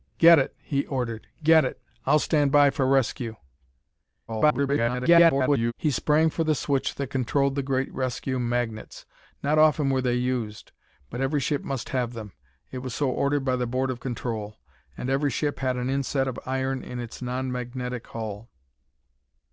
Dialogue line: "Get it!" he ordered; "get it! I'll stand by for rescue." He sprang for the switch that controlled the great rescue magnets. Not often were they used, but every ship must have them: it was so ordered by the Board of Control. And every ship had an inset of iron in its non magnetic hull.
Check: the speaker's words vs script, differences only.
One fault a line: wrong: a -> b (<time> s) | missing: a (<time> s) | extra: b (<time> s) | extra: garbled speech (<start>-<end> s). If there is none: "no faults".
extra: garbled speech (4.3-5.7 s)